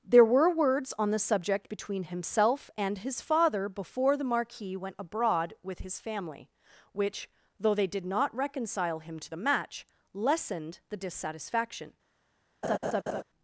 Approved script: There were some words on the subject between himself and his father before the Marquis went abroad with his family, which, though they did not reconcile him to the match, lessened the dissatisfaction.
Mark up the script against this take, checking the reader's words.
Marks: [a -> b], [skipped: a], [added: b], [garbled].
There were [skipped: some] words on the subject between himself and his father before the Marquis went abroad with his family, which, though they did not reconcile him to the match, lessened the dissatisfaction.